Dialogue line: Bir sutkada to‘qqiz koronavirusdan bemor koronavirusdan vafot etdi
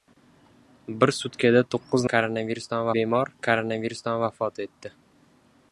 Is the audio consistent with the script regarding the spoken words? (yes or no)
yes